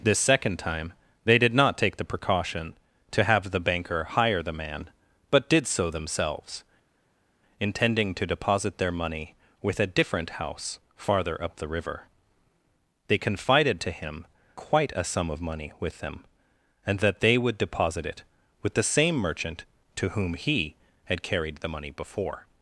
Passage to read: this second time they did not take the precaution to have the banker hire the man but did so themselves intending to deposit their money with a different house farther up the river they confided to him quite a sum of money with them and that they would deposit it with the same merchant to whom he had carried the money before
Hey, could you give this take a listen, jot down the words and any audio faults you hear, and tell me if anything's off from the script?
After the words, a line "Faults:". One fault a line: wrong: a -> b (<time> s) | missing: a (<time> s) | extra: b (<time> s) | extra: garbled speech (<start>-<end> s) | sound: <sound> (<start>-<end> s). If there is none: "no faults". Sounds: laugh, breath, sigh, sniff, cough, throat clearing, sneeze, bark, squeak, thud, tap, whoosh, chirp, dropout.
this second time they did not take the precaution to have the banker hire the man but did so themselves intending to deposit their money with a different house farther up the river they confided to him quite a sum of money with them and that they would deposit it with the same merchant to whom he had carried the money before
Faults:
no faults